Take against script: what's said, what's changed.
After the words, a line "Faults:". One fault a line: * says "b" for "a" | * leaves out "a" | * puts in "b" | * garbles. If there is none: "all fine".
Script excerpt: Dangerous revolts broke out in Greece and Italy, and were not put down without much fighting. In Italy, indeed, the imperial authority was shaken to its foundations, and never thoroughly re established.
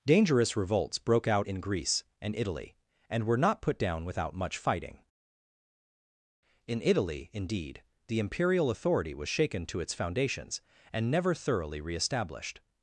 Dangerous revolts broke out in Greece and Italy, and were not put down without much fighting. In Italy, indeed, the imperial authority was shaken to its foundations, and never thoroughly re established.
Faults:
all fine